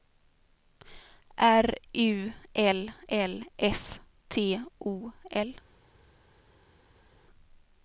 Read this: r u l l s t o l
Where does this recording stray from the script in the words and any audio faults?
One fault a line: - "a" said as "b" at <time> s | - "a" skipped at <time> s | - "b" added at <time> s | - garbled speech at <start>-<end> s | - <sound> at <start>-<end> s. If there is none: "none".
none